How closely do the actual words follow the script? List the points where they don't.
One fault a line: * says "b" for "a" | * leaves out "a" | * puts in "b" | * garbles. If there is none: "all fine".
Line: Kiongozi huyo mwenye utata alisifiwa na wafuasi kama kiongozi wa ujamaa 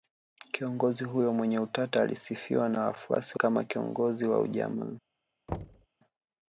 all fine